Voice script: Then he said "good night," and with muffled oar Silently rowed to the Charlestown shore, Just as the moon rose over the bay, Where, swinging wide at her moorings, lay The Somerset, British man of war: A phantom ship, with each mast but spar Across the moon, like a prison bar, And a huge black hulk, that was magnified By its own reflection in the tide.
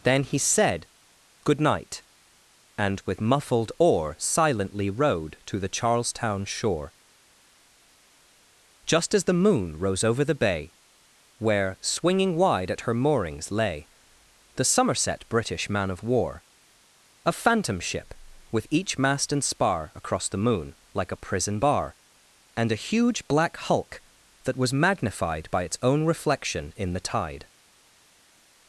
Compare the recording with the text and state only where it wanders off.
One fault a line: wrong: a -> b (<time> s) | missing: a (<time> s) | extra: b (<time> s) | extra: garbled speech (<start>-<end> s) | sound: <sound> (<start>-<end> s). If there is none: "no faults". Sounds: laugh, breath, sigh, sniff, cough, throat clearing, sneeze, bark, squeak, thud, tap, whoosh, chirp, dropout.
wrong: but -> and (19.3 s)